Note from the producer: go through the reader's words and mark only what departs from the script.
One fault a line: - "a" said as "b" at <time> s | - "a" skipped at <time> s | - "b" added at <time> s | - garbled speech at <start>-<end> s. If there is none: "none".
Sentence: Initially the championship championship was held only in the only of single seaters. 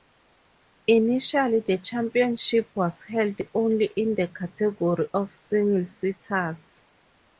- "championship" skipped at 2.8 s
- "only" said as "category" at 4.3 s